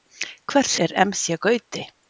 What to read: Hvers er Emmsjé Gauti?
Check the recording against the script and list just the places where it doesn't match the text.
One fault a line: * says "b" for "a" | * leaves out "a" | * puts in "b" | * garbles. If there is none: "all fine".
all fine